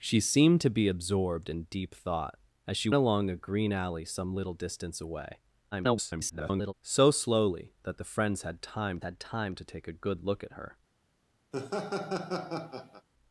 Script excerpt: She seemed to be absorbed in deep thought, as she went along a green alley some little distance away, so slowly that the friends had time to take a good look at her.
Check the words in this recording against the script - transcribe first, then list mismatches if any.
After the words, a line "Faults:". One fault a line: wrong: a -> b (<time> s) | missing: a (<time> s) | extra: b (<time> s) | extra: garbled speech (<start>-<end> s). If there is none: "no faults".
She seemed to be absorbed in deep thought, as she along a green alley some little distance away, [garbled] so slowly that the friends had time had time to take a good look at her.
Faults:
missing: went (2.9 s)
extra: garbled speech (5.7-6.7 s)
extra: had time (9.0 s)